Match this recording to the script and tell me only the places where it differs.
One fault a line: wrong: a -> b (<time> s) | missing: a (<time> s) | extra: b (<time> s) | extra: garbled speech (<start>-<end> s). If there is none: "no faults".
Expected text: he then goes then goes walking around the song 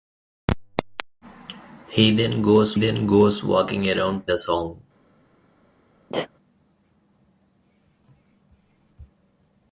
no faults